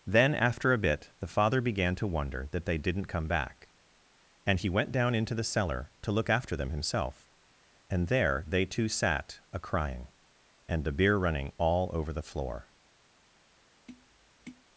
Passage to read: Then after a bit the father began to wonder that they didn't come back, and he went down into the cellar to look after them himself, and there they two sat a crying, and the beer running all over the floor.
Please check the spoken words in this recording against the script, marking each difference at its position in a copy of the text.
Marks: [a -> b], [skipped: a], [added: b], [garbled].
Then after a bit the father began to wonder that they didn't come back, and he went down into the cellar to look after them himself, and there they two sat a crying, and the beer running all over the floor.